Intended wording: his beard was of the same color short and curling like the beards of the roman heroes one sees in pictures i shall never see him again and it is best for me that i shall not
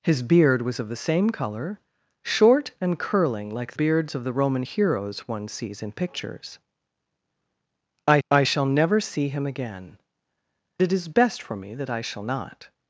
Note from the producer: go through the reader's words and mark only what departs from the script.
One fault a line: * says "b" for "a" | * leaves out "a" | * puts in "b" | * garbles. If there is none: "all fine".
* leaves out "the"
* puts in "i"
* leaves out "and"